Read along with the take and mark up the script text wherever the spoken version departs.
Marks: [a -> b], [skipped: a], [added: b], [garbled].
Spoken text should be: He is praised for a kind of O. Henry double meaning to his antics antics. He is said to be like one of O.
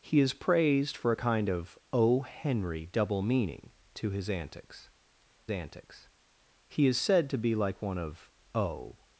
He is praised for a kind of O. Henry double meaning to his antics antics. He is said to be like one of O.